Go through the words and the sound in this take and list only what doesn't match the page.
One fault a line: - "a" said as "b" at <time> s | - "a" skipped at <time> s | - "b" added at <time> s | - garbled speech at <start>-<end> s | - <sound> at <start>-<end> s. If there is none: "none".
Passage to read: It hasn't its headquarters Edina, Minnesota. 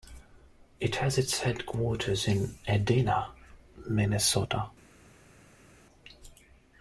- "hasn't" said as "has" at 0.9 s
- "in" added at 2.3 s